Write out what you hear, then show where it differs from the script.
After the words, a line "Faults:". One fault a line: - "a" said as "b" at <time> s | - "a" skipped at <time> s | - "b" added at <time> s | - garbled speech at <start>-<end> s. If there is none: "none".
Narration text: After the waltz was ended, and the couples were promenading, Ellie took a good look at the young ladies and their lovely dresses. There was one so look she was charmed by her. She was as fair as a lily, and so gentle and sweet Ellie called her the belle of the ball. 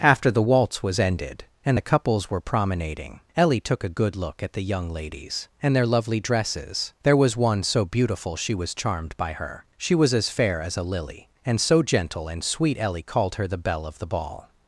After the waltz was ended, and the couples were promenading, Ellie took a good look at the young ladies and their lovely dresses. There was one so beautiful she was charmed by her. She was as fair as a lily, and so gentle and sweet Ellie called her the belle of the ball.
Faults:
- "look" said as "beautiful" at 7.8 s